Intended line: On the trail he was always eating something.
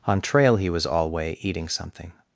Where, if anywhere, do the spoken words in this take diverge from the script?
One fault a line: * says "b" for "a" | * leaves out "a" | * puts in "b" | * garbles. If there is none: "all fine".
* leaves out "the"
* says "alway" for "always"